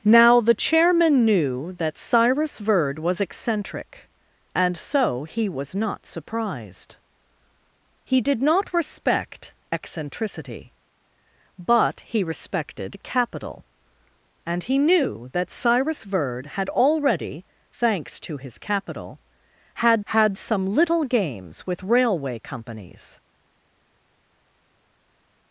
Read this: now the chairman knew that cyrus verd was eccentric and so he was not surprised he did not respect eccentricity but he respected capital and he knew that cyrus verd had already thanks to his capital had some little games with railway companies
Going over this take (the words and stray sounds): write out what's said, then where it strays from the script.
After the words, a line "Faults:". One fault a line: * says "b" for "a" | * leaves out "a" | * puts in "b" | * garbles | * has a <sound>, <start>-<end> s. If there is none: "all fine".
now the chairman knew that cyrus verd was eccentric and so he was not surprised he did not respect eccentricity but he respected capital and he knew that cyrus verd had already thanks to his capital had had some little games with railway companies
Faults:
* puts in "had"